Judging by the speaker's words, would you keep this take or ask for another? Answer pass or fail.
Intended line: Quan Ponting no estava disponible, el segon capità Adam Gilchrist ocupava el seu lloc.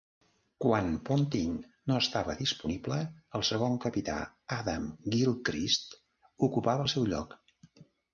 pass